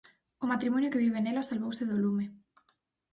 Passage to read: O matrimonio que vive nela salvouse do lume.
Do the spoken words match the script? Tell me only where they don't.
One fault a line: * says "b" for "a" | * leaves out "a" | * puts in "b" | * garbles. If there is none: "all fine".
all fine